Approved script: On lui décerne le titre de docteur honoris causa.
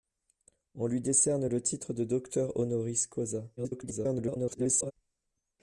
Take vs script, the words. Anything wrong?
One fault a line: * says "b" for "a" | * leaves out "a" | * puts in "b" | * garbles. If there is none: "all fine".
* garbles